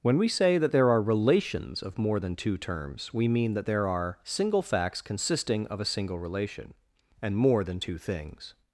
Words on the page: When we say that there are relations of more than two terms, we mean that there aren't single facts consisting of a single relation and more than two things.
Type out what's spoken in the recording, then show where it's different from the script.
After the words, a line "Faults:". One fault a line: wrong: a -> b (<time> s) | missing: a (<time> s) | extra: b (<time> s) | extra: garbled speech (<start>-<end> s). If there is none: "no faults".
When we say that there are relations of more than two terms, we mean that there are single facts consisting of a single relation and more than two things.
Faults:
wrong: aren't -> are (3.8 s)